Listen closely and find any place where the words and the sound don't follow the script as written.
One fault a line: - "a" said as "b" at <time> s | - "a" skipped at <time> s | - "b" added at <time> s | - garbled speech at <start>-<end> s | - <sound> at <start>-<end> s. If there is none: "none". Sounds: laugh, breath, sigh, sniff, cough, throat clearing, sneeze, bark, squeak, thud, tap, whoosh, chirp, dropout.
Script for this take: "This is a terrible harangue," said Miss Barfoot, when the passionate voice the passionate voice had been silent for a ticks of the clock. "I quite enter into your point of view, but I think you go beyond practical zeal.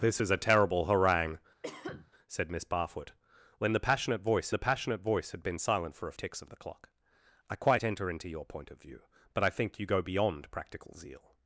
- cough at 1.6-2.1 s